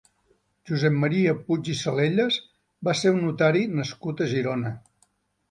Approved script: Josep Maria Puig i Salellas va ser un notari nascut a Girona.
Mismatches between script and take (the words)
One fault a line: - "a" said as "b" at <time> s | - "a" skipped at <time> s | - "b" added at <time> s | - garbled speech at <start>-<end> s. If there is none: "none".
none